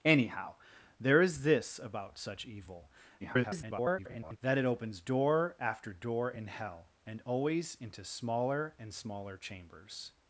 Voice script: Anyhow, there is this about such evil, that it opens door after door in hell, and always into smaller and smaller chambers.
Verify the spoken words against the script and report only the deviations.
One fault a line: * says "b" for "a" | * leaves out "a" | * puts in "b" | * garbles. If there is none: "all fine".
* garbles